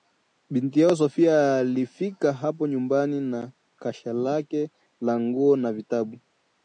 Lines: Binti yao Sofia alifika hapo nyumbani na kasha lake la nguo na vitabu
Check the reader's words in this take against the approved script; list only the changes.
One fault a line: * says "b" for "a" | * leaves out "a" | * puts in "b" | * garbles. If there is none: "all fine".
all fine